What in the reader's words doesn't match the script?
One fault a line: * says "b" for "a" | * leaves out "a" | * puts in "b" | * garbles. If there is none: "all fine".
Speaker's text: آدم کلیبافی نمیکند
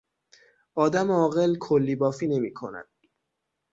* puts in "عاقل"